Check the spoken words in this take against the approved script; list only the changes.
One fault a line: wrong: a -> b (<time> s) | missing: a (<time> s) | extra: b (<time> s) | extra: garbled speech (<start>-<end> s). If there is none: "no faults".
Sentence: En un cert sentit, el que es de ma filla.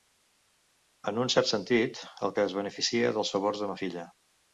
extra: beneficia dels favors (2.6 s)